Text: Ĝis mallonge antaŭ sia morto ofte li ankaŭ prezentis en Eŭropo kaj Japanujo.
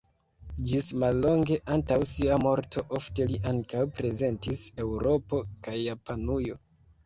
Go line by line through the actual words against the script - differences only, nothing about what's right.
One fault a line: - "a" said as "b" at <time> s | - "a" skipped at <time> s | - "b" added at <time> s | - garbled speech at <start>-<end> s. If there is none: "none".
- "en" skipped at 4.7 s